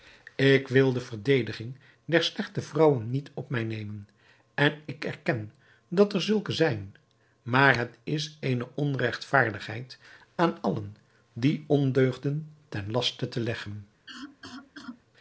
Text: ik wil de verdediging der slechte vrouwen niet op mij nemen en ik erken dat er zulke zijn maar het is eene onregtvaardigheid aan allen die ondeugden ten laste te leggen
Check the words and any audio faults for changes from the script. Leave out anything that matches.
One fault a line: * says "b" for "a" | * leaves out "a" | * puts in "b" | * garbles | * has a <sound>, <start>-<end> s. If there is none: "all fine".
* has a cough, 14.1-15.0 s